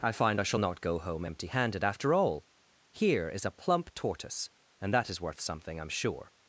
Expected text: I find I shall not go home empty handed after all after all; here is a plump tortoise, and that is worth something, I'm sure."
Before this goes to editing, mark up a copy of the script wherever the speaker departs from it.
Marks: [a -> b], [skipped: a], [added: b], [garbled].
I find I shall not go home empty handed after all [skipped: after all;] here is a plump tortoise, and that is worth something, I'm sure."